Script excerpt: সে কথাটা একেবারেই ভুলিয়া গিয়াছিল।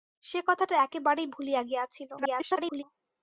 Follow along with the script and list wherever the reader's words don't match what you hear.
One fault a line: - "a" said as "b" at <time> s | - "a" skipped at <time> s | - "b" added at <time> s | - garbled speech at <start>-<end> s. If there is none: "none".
- garbled speech at 2.2-2.8 s